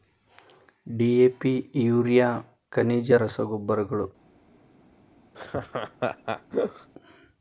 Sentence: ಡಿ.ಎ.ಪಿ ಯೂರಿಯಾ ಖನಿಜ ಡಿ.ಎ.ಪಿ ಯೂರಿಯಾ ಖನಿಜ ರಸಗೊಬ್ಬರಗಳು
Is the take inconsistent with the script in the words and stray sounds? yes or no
yes